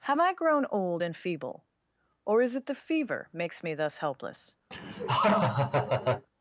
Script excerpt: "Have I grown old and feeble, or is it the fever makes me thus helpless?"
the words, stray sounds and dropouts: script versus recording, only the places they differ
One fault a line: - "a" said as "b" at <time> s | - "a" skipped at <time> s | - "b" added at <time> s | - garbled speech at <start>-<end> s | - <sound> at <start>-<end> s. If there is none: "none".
- laugh at 4.7-6.3 s